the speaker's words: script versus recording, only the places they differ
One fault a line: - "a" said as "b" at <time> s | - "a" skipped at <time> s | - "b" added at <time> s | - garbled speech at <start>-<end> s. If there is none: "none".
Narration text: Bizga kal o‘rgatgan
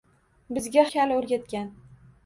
none